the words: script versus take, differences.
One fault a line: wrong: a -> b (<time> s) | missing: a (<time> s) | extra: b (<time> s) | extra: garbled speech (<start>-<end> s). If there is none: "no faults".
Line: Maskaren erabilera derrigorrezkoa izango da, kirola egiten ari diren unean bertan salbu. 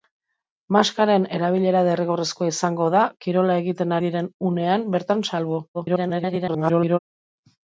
missing: ari (4.0 s)
extra: garbled speech (5.7-7.0 s)